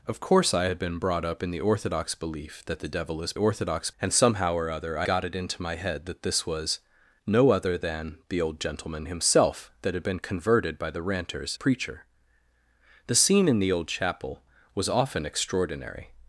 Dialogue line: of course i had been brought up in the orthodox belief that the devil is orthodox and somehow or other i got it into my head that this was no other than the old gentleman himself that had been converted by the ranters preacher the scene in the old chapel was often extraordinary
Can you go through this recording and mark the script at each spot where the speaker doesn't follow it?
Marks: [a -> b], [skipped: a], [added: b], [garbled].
of course i had been brought up in the orthodox belief that the devil is orthodox and somehow or other i got it into my head that this was no other than the old gentleman himself that had been converted by the ranters preacher the scene in the old chapel was often extraordinary